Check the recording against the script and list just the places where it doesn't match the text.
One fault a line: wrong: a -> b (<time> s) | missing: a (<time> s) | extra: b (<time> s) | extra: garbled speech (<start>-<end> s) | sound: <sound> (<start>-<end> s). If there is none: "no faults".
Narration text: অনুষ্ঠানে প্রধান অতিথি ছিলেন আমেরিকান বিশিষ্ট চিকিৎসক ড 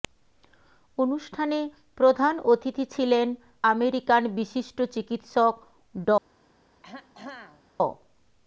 sound: throat clearing (6.8-7.6 s)